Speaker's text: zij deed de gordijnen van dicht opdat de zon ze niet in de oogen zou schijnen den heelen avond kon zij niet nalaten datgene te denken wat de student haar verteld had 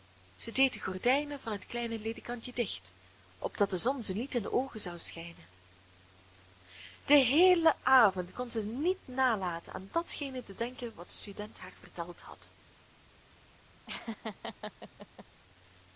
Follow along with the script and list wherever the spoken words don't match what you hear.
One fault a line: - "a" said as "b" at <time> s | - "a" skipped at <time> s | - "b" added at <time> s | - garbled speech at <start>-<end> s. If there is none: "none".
- "het kleine ledekantje" added at 1.5 s
- "aan" added at 9.7 s